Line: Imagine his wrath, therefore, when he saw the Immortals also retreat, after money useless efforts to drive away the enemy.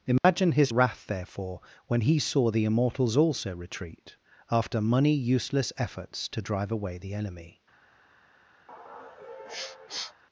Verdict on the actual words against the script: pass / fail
pass